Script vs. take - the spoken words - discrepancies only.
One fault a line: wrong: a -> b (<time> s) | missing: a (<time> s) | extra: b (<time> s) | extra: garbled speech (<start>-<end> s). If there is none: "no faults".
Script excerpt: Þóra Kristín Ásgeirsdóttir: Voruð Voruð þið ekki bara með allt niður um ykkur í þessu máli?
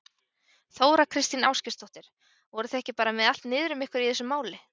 missing: Voruð (2.8 s)